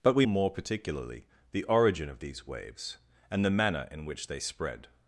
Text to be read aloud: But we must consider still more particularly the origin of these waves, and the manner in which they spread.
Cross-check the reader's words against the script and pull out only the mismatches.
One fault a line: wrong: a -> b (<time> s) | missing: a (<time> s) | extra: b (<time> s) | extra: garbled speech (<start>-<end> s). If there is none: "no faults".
missing: must consider still (0.2 s)